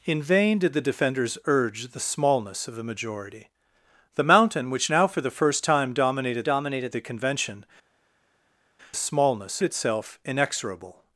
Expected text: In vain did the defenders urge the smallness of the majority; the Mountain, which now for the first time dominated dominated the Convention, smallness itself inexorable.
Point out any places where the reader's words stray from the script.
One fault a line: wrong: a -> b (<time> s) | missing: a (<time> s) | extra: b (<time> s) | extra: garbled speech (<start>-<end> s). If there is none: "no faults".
no faults